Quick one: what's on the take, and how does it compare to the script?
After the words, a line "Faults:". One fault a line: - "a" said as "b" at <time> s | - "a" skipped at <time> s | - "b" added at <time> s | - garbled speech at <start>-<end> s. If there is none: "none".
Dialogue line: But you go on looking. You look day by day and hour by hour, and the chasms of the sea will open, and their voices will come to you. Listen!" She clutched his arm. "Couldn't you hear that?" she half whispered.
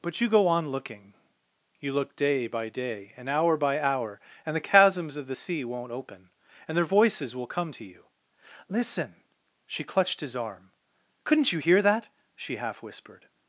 But you go on looking. You look day by day and hour by hour, and the chasms of the sea won't open, and their voices will come to you. Listen!" She clutched his arm. "Couldn't you hear that?" she half whispered.
Faults:
- "will" said as "won't" at 5.6 s